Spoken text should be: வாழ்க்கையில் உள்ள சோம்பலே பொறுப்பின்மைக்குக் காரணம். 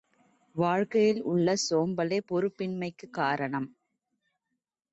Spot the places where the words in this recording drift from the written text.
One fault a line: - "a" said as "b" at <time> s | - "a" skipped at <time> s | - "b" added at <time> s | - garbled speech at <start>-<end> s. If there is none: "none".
none